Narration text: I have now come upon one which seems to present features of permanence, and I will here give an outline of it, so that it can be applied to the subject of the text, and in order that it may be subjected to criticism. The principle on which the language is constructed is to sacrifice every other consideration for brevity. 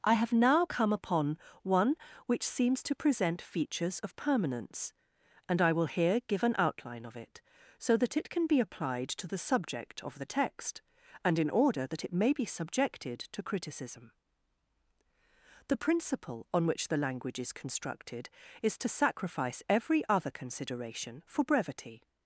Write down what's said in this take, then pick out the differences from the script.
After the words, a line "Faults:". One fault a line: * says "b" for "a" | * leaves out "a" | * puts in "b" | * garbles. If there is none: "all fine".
I have now come upon one which seems to present features of permanence, and I will here give an outline of it, so that it can be applied to the subject of the text, and in order that it may be subjected to criticism. The principle on which the language is constructed is to sacrifice every other consideration for brevity.
Faults:
all fine